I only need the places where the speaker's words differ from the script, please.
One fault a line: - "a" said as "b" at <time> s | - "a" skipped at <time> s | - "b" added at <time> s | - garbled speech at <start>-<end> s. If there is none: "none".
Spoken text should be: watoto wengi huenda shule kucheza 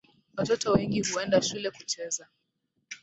none